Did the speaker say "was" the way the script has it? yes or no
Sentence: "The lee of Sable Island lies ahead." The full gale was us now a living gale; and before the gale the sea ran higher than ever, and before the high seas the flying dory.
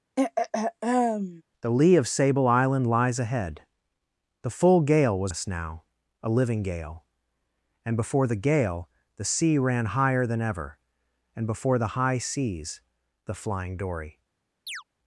yes